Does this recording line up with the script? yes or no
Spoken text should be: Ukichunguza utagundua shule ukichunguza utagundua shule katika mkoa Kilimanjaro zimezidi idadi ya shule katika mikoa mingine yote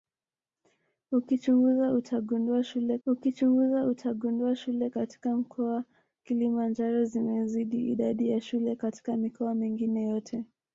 yes